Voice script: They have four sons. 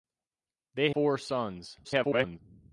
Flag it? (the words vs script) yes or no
yes